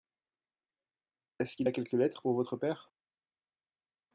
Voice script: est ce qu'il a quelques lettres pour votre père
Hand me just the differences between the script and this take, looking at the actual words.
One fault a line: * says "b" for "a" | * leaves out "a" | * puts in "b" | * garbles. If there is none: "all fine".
all fine